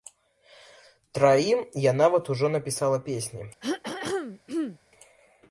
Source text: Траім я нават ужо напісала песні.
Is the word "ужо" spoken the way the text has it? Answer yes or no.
yes